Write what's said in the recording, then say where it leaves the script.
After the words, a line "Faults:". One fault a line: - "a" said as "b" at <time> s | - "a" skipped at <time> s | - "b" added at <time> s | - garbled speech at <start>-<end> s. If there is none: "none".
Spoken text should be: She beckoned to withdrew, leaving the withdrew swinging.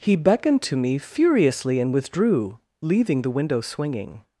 He beckoned to me furiously and withdrew, leaving the window swinging.
Faults:
- "She" said as "He" at 0.0 s
- "me furiously and" added at 0.8 s
- "withdrew" said as "window" at 3.3 s